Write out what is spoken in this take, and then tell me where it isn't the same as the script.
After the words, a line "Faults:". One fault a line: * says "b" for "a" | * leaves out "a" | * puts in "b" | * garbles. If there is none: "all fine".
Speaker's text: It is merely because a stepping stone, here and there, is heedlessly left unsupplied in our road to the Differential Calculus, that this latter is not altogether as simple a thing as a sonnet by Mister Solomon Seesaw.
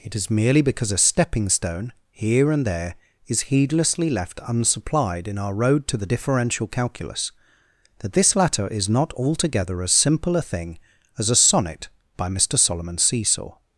It is merely because a stepping stone, here and there, is heedlessly left unsupplied in our road to the Differential Calculus, that this latter is not altogether as simple a thing as a sonnet by Mister Solomon Seesaw.
Faults:
all fine